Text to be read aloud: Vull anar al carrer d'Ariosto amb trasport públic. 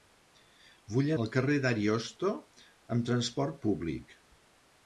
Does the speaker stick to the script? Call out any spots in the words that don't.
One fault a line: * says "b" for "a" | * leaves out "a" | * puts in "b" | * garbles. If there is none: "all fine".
* leaves out "anar"